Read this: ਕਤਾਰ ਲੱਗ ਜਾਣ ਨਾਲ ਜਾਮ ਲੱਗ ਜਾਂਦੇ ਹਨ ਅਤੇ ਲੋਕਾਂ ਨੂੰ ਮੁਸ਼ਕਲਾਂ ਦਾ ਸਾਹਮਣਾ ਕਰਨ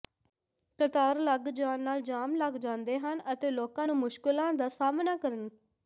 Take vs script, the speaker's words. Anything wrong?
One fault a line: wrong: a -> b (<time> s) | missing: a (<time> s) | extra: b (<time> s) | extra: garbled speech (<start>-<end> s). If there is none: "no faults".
no faults